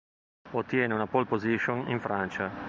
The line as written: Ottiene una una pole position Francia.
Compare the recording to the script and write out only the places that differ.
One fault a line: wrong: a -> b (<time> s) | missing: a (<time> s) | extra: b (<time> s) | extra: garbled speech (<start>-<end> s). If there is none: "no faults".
missing: una (1.1 s)
extra: in (1.9 s)